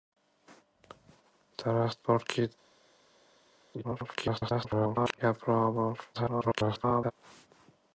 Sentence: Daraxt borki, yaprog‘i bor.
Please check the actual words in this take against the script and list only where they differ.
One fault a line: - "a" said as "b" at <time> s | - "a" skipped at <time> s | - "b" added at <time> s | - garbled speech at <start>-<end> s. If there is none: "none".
- garbled speech at 3.8-5.2 s
- garbled speech at 6.1-7.1 s